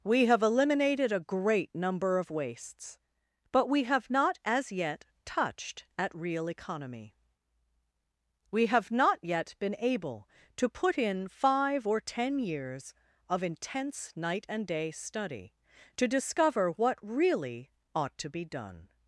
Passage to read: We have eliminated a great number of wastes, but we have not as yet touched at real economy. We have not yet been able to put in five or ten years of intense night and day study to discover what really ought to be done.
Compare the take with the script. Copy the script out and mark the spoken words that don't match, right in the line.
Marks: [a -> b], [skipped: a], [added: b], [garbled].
We have eliminated a great number of wastes, but we have not as yet touched at real economy. We have not yet been able to put in five or ten years of intense night and day study to discover what really ought to be done.